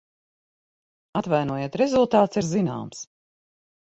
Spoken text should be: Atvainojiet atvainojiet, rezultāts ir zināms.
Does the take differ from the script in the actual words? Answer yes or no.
yes